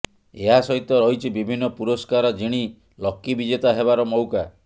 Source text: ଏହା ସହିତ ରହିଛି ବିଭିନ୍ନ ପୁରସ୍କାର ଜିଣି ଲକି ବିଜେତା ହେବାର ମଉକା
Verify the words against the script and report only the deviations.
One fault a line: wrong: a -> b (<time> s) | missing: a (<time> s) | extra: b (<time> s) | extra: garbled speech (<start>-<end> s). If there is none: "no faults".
no faults